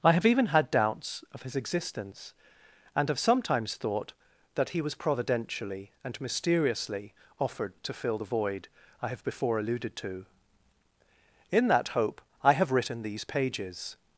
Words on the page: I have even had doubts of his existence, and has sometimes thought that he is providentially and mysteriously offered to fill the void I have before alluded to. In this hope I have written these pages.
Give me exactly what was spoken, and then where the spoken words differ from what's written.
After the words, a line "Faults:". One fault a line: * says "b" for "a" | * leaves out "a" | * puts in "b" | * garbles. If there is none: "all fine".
I have even had doubts of his existence, and have sometimes thought that he was providentially and mysteriously offered to fill the void I have before alluded to. In that hope I have written these pages.
Faults:
* says "have" for "has"
* says "was" for "is"
* says "that" for "this"